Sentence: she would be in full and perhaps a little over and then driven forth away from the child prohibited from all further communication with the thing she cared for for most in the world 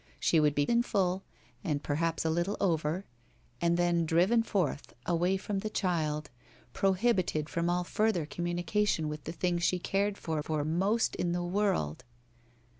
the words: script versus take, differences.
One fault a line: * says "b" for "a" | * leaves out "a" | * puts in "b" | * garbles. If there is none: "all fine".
all fine